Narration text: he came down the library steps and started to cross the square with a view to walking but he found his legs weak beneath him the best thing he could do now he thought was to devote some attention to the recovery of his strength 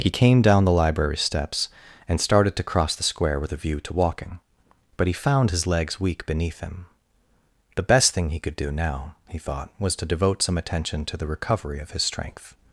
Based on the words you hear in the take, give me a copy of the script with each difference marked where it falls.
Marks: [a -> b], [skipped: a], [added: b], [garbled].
he came down the library steps and started to cross the square with a view to walking but he found his legs weak beneath him the best thing he could do now he thought was to devote some attention to the recovery of his strength